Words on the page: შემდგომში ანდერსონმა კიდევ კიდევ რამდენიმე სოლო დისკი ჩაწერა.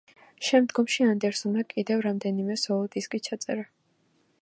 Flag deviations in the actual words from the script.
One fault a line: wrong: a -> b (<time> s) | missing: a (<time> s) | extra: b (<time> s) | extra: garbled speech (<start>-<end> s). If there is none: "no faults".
missing: კიდევ (2.0 s)